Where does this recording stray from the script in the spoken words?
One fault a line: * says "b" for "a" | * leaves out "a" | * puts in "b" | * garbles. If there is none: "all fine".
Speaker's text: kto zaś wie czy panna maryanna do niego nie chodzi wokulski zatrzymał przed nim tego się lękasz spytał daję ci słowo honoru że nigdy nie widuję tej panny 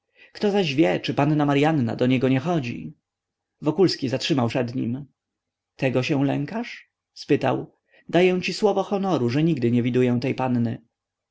all fine